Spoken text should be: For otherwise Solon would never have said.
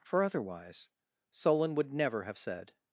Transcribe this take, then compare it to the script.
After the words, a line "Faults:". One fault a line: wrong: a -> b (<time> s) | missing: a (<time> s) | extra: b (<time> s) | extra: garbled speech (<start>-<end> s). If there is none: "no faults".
For otherwise Solon would never have said.
Faults:
no faults